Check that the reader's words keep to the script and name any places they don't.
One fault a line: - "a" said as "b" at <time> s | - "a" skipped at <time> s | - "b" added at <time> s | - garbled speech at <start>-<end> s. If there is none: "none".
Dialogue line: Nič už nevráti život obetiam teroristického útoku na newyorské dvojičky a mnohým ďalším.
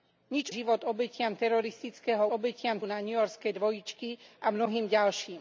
- "už nevráti" skipped at 0.5 s
- "útoku" said as "obetiam" at 2.3 s